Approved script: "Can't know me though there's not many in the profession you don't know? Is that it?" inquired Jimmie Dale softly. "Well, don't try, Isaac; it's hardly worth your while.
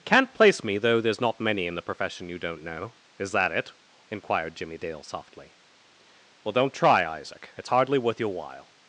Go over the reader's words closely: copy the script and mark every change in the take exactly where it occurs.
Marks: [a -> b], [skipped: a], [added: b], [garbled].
"Can't [know -> place] me though there's not many in the profession you don't know? Is that it?" inquired Jimmie Dale softly. "Well, don't try, Isaac; it's hardly worth your while.